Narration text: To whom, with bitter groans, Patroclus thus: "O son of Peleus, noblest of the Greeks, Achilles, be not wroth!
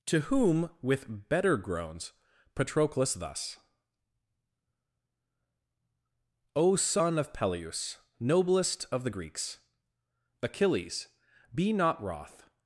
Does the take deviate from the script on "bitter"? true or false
true